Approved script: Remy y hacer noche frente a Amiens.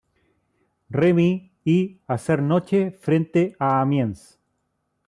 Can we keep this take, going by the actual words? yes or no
yes